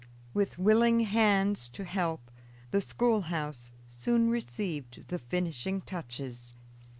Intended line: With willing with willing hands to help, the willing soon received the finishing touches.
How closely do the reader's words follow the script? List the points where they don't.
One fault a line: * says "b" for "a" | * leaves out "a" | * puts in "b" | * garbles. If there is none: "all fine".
* leaves out "with willing"
* says "schoolhouse" for "willing"